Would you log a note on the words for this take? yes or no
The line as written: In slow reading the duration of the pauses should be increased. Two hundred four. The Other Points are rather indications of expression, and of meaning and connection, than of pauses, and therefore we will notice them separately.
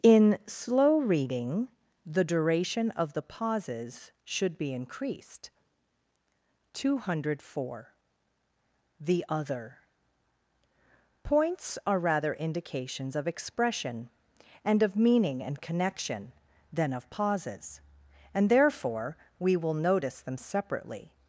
no